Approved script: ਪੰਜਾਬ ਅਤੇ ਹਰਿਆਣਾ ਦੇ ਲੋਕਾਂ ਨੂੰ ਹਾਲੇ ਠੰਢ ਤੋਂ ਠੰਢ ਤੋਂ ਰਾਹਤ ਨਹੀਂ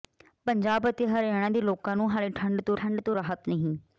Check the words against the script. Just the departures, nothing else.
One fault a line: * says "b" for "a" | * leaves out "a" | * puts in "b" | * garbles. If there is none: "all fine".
all fine